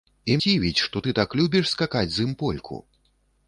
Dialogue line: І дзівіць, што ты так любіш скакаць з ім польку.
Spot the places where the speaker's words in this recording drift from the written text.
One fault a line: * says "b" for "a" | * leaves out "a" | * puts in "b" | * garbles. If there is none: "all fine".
all fine